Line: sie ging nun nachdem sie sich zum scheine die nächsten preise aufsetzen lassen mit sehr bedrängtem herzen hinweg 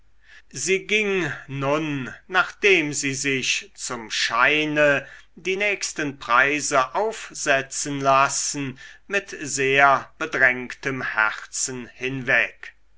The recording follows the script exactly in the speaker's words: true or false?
true